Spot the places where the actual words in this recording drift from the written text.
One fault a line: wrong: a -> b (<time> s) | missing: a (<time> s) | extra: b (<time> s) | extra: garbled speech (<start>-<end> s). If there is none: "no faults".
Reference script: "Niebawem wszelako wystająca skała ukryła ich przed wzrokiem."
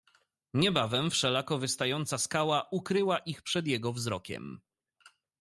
extra: jego (3.7 s)